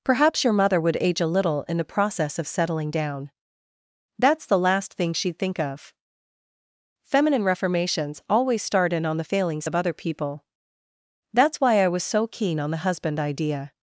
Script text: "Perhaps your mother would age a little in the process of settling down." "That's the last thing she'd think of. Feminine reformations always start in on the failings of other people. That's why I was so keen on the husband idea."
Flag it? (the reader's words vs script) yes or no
no